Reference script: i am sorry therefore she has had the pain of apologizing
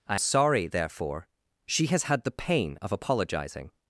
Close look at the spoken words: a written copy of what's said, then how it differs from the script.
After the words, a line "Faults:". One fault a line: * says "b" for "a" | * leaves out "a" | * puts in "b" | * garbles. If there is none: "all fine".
i sorry therefore she has had the pain of apologizing
Faults:
* leaves out "am"